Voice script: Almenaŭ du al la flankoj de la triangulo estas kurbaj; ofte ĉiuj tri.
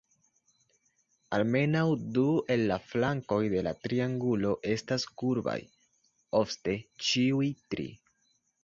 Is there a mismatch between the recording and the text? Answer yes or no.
yes